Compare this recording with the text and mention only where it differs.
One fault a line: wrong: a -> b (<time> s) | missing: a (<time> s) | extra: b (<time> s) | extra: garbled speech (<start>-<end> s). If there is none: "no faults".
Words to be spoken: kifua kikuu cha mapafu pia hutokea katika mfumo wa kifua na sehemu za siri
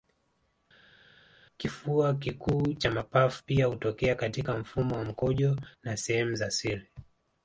wrong: kifua -> mkojo (5.0 s)